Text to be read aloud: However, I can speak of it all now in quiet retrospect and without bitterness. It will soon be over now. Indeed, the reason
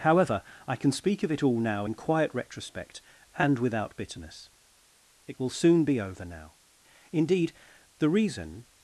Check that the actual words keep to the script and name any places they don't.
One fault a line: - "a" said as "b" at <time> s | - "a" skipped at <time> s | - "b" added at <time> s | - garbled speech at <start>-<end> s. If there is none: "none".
none